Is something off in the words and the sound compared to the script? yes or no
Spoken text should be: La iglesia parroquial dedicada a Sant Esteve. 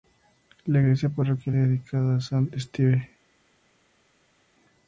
no